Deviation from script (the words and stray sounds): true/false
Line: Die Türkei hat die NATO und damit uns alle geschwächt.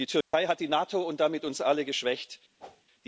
true